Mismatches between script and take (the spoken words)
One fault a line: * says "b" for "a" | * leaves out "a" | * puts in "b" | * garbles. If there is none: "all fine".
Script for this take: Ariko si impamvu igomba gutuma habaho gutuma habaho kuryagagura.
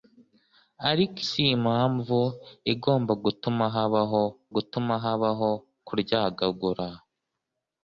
all fine